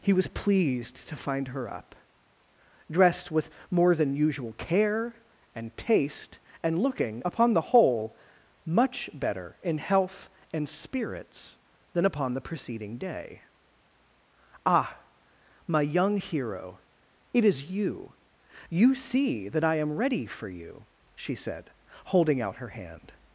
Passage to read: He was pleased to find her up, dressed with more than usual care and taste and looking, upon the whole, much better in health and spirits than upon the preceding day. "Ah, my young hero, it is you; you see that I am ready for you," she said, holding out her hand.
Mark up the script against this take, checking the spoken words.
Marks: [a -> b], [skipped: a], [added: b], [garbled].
He was pleased to find her up, dressed with more than usual care and taste and looking, upon the whole, much better in health and spirits than upon the preceding day. "Ah, my young hero, it is you; you see that I am ready for you," she said, holding out her hand.